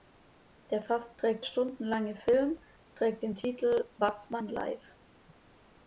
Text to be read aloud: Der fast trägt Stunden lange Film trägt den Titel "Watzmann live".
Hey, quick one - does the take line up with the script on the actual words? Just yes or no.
yes